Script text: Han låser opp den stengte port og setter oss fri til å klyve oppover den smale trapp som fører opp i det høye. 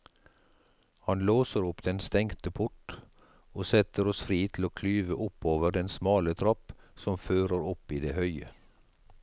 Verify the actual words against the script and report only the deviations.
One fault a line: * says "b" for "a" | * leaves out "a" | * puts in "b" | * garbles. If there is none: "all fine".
all fine